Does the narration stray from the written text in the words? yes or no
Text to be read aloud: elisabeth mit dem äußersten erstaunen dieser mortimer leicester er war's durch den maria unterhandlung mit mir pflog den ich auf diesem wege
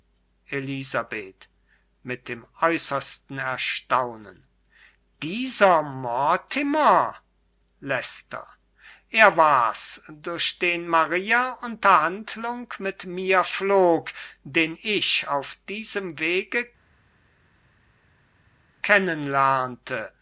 no